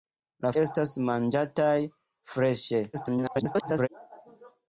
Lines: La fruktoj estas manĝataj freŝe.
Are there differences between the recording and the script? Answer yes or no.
yes